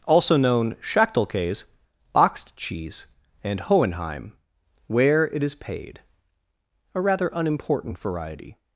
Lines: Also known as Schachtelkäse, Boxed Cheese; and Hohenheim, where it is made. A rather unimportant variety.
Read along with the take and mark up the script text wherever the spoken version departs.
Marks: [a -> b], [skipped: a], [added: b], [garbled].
Also known [skipped: as] Schachtelkäse, Boxed Cheese; and Hohenheim, where it is [made. -> paid] A rather unimportant variety.